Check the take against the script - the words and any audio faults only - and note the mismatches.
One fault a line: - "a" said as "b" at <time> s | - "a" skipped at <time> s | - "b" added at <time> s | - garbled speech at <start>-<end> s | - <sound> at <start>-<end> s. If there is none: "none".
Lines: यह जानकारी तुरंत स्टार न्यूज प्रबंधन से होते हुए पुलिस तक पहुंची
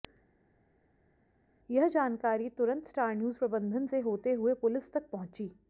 none